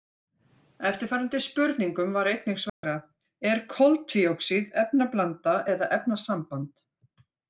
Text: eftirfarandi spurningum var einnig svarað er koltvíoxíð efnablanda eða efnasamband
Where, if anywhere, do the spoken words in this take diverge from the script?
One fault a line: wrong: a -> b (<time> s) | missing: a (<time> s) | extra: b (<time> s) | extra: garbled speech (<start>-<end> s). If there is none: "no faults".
no faults